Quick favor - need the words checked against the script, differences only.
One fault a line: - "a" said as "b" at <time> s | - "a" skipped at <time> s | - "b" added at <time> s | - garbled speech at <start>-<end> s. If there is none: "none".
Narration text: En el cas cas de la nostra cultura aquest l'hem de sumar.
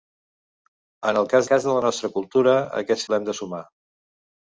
none